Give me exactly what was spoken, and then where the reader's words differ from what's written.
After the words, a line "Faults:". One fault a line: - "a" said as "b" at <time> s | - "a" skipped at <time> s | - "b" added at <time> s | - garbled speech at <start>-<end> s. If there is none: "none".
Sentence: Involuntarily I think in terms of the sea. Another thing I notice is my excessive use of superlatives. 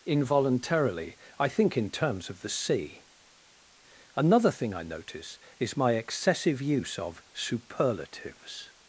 Involuntarily I think in terms of the sea. Another thing I notice is my excessive use of superlatives.
Faults:
none